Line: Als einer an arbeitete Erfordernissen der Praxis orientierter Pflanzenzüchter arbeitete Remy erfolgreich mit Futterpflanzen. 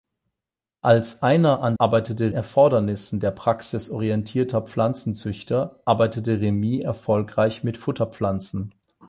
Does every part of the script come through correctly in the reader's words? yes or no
yes